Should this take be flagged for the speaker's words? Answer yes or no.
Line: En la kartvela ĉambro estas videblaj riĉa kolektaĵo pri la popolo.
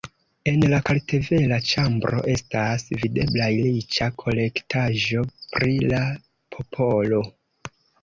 no